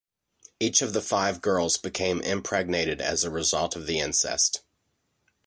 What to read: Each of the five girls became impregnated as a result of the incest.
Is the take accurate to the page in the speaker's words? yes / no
yes